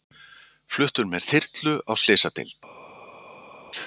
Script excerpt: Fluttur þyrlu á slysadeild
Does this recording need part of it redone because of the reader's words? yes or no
yes